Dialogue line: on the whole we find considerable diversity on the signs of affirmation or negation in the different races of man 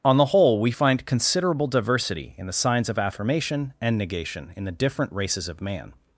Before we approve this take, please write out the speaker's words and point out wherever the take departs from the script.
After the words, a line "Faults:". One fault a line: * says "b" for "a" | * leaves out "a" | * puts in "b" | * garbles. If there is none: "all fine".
on the whole we find considerable diversity in the signs of affirmation and negation in the different races of man
Faults:
* says "in" for "on"
* says "and" for "or"